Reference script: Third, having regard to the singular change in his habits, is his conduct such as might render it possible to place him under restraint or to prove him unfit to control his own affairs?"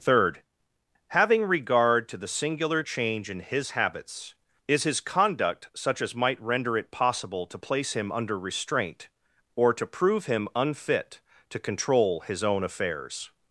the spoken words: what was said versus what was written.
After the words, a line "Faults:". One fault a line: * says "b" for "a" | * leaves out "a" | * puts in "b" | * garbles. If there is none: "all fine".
Third, having regard to the singular change in his habits, is his conduct such as might render it possible to place him under restraint or to prove him unfit to control his own affairs?"
Faults:
all fine